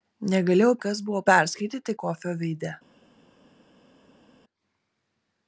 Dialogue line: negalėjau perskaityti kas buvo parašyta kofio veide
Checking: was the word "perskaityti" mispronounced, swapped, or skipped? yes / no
yes